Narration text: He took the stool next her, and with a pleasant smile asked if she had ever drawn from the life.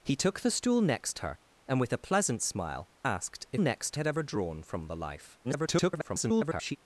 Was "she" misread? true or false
true